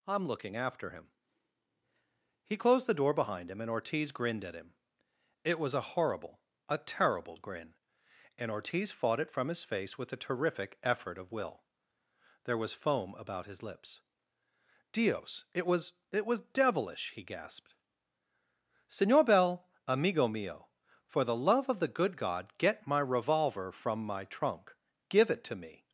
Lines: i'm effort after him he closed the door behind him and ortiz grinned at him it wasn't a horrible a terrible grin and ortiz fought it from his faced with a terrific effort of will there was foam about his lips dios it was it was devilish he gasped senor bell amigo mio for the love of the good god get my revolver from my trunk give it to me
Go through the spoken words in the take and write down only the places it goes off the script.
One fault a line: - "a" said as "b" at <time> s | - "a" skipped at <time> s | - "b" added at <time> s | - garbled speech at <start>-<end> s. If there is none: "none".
- "effort" said as "looking" at 0.3 s
- "wasn't" said as "was" at 5.6 s
- "faced" said as "face" at 9.6 s